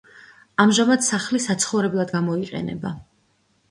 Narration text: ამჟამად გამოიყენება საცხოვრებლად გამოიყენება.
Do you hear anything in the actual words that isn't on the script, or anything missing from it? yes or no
yes